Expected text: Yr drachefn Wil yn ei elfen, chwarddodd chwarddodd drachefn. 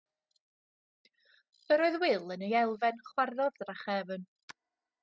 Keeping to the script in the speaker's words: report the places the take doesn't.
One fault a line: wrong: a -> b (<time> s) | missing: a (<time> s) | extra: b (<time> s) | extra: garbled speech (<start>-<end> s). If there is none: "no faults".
wrong: drachefn -> oedd (1.9 s)
missing: chwarddodd (3.6 s)